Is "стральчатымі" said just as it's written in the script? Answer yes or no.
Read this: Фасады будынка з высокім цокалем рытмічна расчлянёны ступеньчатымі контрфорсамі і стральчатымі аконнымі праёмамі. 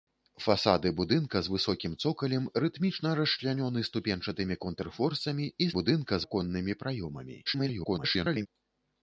no